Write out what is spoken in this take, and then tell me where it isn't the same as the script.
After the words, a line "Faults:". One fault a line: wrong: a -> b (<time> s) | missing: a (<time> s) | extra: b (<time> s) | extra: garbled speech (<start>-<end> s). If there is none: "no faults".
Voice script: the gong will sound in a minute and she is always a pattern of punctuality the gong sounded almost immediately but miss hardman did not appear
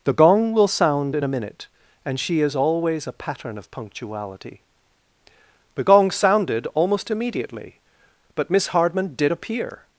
the gong will sound in a minute and she is always a pattern of punctuality the gong sounded almost immediately but miss hardman did appear
Faults:
missing: not (9.3 s)